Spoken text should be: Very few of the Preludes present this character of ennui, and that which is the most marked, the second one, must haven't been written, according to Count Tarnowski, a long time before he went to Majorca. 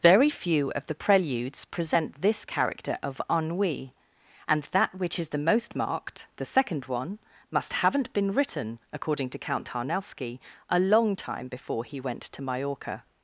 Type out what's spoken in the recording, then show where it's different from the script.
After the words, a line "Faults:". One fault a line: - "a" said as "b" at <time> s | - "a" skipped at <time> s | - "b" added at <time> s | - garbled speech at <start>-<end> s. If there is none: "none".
Very few of the Preludes present this character of ennui, and that which is the most marked, the second one, must haven't been written, according to Count Tarnowski, a long time before he went to Majorca.
Faults:
none